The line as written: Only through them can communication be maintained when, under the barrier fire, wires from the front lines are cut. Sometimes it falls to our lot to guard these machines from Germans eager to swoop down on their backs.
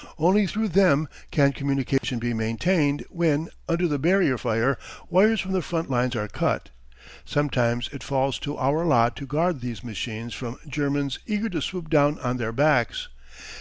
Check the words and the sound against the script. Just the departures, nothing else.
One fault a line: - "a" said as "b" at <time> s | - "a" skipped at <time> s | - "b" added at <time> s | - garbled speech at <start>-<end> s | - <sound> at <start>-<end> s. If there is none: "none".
- dropout at 2.0-2.0 s